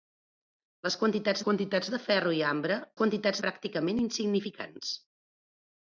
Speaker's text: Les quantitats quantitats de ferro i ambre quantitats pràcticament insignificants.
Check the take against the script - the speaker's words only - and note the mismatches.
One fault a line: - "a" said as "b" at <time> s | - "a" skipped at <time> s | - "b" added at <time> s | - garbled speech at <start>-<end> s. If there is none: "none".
none